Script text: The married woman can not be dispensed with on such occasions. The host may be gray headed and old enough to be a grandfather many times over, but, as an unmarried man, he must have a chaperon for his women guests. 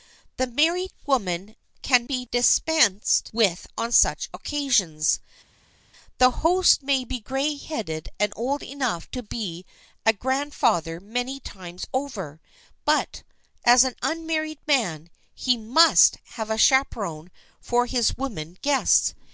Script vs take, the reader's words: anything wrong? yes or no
yes